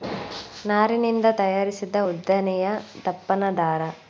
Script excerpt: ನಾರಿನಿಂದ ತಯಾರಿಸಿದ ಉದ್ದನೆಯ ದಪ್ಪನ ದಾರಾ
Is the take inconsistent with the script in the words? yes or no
no